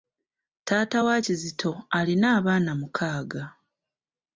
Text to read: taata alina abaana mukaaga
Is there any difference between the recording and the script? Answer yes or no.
yes